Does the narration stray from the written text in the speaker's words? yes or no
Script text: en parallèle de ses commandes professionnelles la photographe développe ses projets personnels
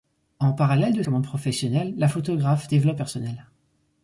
yes